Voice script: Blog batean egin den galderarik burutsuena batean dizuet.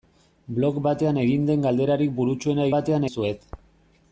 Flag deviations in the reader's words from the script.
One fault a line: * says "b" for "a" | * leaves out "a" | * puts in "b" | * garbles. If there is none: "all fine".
all fine